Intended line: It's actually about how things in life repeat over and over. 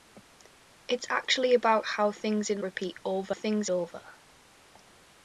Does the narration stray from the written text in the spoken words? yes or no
yes